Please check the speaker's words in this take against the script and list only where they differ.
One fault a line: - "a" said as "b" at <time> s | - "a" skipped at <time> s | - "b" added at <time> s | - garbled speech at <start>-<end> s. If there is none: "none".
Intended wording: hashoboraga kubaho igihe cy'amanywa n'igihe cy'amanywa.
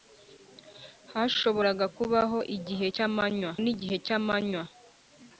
none